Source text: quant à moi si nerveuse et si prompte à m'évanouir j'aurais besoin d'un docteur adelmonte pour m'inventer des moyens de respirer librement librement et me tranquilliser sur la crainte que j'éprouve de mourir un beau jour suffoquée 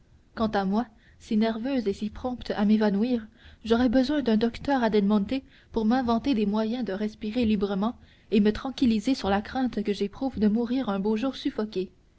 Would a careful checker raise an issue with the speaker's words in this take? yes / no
yes